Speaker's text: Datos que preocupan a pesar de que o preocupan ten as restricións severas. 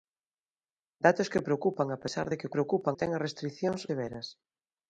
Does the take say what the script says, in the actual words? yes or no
yes